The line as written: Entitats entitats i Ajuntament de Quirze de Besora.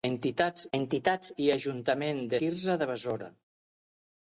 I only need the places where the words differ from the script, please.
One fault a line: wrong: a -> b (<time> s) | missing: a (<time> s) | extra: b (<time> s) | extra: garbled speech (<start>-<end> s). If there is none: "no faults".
no faults